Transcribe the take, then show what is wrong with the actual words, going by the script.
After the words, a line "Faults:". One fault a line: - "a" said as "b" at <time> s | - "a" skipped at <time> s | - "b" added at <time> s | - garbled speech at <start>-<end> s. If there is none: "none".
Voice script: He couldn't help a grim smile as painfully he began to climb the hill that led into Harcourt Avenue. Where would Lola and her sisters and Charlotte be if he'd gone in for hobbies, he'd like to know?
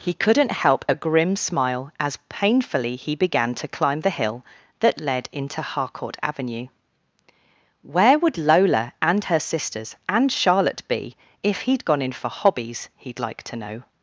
He couldn't help a grim smile as painfully he began to climb the hill that led into Harcourt Avenue. Where would Lola and her sisters and Charlotte be if he'd gone in for hobbies, he'd like to know?
Faults:
none